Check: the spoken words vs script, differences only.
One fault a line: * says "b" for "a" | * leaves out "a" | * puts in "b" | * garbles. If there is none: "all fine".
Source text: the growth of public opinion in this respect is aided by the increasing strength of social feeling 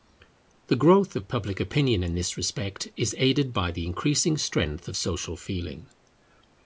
all fine